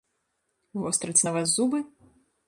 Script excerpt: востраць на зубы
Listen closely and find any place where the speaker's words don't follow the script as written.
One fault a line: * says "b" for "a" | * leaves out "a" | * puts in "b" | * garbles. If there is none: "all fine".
* puts in "вас"